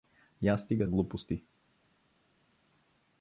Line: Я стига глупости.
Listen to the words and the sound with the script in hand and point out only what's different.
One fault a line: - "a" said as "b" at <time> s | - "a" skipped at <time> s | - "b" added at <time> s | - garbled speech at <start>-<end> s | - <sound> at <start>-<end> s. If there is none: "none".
none